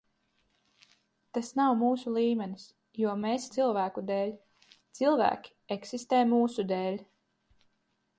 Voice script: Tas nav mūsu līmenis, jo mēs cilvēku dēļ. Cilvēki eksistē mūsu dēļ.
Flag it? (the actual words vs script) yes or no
no